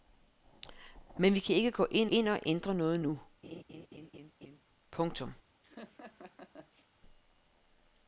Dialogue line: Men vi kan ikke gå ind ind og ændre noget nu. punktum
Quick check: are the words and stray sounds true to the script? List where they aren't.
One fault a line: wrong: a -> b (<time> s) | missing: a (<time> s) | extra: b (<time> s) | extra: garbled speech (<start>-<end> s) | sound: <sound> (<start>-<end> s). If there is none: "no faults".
sound: laugh (3.4-4.6 s)
sound: laugh (5.6-6.9 s)